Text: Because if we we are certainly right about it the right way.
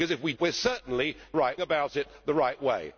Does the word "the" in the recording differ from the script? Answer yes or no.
no